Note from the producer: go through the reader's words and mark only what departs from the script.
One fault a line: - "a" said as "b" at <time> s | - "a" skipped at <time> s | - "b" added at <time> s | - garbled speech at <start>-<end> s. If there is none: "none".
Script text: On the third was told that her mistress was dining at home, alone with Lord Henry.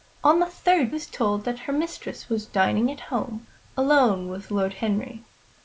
none